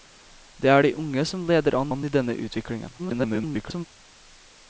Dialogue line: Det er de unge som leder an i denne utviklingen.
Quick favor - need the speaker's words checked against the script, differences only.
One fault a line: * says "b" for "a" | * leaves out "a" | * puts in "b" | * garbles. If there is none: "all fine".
* puts in "an"
* garbles